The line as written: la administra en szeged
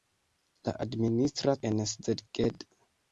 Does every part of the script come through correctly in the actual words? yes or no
yes